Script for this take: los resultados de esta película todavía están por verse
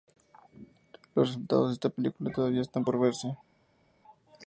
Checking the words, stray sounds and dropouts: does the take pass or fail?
pass